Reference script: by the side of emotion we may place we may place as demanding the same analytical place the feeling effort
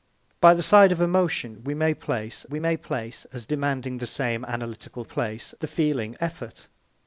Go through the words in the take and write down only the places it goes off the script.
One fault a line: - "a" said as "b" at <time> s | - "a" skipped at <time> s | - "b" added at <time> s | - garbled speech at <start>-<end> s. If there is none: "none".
none